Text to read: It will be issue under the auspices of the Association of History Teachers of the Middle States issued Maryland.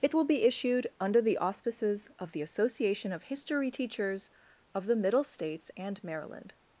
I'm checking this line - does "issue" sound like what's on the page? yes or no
no